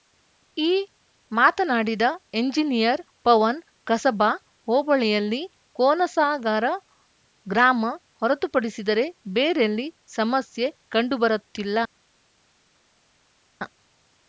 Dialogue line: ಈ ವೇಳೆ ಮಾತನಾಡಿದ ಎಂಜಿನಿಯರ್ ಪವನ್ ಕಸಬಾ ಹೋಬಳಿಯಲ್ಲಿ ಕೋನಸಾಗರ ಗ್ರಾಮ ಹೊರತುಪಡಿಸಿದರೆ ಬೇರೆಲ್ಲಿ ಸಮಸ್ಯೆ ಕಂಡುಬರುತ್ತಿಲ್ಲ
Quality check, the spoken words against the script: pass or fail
fail